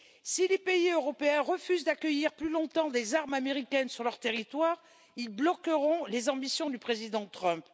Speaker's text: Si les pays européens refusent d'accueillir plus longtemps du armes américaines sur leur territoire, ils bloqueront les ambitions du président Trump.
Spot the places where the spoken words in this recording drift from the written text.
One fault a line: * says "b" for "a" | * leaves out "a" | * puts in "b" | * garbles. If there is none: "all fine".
* says "des" for "du"